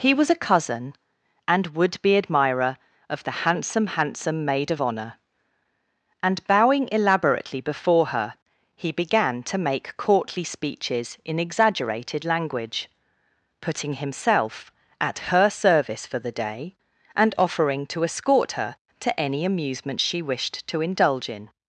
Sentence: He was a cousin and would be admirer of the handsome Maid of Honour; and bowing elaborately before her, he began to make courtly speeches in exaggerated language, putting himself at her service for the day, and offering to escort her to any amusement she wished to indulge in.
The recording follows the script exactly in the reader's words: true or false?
false